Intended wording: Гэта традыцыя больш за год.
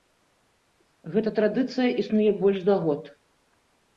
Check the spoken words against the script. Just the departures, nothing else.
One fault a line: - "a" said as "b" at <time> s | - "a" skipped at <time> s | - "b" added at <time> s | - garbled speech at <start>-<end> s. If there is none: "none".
- "існуе" added at 2.0 s